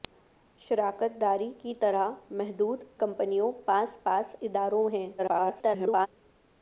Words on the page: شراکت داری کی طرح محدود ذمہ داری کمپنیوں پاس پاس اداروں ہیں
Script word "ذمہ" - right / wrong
wrong